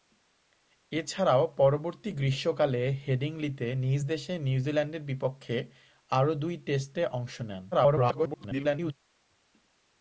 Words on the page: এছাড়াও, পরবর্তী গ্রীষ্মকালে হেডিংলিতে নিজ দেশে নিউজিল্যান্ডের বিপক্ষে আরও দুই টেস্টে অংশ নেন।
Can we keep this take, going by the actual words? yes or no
no